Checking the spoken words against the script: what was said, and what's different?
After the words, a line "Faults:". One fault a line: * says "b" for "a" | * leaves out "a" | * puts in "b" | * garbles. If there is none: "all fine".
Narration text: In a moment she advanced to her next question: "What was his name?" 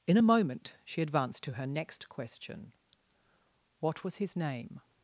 In a moment she advanced to her next question: "What was his name?"
Faults:
all fine